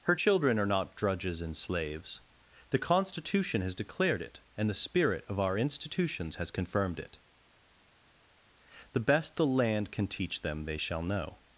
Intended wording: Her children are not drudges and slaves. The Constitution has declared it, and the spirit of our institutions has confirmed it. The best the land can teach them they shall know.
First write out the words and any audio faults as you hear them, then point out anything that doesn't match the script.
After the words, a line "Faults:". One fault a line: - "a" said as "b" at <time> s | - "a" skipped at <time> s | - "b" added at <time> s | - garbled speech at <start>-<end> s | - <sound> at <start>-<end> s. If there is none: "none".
Her children are not drudges and slaves. The Constitution has declared it, and the spirit of our institutions has confirmed it. The best the land can teach them they shall know.
Faults:
none